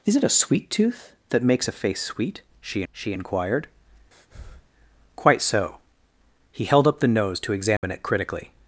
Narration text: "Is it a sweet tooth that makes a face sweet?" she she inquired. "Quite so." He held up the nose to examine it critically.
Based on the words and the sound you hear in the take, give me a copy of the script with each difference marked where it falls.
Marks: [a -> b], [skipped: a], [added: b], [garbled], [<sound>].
"Is it a sweet tooth that makes a face sweet?" she she inquired. [breath] "Quite so." He held up the nose to examine [dropout] it critically.